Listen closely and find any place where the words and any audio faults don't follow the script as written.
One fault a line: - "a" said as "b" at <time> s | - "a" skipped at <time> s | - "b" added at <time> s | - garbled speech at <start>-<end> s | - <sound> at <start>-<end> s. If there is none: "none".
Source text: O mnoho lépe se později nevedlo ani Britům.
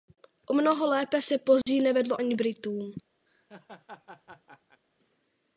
- dropout at 1.6-1.7 s
- laugh at 3.3-4.8 s